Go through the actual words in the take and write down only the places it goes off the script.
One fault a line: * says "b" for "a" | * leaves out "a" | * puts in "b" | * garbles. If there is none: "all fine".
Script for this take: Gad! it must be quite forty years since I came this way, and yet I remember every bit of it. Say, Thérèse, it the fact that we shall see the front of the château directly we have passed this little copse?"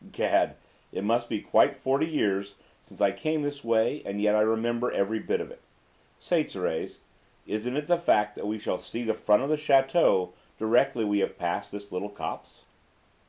* puts in "isn't"